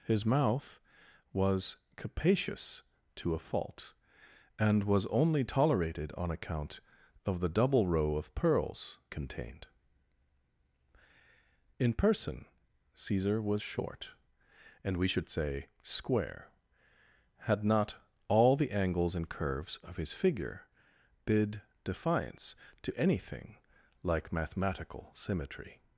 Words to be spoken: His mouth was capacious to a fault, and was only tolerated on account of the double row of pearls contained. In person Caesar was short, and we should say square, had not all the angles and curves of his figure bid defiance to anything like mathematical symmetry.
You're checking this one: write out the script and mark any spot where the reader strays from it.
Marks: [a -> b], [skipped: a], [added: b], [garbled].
His mouth was capacious to a fault, and was only tolerated on account of the double row of pearls contained. In person Caesar was short, and we should say square, had not all the angles and curves of his figure bid defiance to anything like mathematical symmetry.